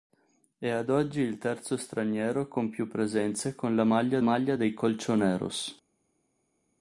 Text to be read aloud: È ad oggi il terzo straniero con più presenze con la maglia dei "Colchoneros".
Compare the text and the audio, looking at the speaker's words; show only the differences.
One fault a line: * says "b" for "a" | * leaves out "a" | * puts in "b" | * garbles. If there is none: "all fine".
* puts in "maglia"